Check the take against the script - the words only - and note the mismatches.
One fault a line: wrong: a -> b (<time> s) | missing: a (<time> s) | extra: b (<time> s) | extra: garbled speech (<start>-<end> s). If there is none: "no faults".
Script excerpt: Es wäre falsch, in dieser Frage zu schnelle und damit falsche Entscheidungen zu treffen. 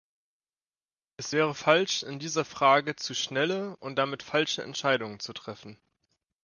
no faults